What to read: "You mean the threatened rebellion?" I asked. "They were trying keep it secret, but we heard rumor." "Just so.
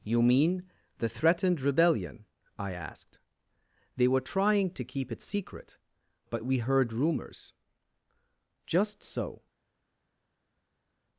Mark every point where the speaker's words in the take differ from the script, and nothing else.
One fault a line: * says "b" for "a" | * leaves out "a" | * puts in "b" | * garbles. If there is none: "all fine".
* puts in "to"
* says "rumors" for "rumor"